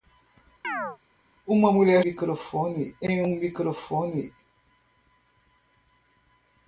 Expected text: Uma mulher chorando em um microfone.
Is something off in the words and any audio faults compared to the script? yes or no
yes